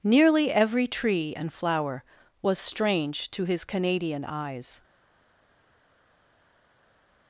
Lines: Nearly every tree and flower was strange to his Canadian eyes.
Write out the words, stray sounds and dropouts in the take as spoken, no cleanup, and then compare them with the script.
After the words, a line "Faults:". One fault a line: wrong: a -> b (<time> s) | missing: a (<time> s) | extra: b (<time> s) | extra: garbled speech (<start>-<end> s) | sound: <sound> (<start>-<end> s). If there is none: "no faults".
Nearly every tree and flower was strange to his Canadian eyes.
Faults:
no faults